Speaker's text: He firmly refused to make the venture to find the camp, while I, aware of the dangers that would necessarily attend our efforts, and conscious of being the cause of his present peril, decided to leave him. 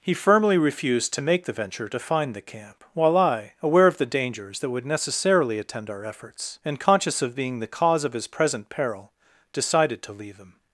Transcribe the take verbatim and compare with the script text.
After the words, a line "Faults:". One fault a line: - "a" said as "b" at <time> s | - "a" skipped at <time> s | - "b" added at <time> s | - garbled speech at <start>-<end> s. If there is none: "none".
He firmly refused to make the venture to find the camp, while I, aware of the dangers that would necessarily attend our efforts, and conscious of being the cause of his present peril, decided to leave him.
Faults:
none